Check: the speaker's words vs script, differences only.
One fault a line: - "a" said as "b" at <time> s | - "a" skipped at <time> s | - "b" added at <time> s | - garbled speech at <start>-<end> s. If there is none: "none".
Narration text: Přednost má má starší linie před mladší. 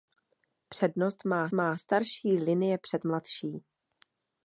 none